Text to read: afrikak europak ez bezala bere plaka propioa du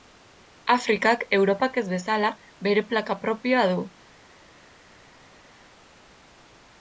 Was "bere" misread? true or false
false